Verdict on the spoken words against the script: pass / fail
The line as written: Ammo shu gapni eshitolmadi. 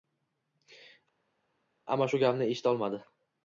pass